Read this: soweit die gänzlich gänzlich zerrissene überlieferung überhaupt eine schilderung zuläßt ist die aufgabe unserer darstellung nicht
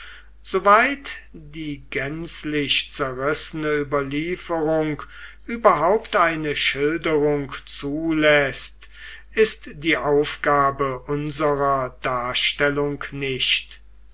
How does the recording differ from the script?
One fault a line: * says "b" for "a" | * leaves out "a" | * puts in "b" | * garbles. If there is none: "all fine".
* leaves out "gänzlich"